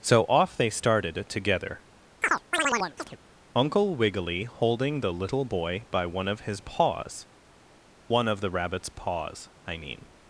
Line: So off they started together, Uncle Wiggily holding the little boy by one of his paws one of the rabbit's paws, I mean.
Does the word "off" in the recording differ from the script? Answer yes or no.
no